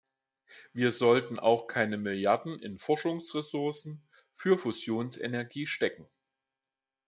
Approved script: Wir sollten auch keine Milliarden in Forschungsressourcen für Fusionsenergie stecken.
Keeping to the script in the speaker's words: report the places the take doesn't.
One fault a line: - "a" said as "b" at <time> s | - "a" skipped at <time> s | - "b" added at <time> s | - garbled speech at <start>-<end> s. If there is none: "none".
none